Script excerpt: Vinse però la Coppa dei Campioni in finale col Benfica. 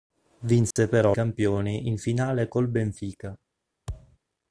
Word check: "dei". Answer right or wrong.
wrong